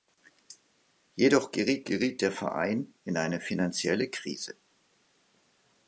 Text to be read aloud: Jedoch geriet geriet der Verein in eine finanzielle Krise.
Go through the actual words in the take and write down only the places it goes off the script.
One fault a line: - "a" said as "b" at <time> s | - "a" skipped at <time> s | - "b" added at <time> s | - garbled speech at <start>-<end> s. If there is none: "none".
none